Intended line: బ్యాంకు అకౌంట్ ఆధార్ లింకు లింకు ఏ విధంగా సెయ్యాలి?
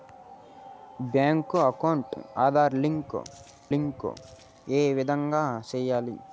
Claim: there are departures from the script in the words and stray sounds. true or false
false